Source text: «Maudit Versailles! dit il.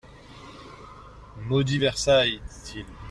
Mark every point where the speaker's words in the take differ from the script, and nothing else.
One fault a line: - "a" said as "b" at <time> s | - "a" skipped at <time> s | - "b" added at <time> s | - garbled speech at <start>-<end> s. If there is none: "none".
none